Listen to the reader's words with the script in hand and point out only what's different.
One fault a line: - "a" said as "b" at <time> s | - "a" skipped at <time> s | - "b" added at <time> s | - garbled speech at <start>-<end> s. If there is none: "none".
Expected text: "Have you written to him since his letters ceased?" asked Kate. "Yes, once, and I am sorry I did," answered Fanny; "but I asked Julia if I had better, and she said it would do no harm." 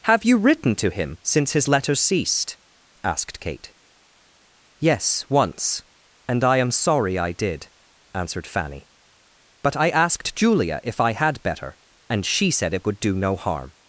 none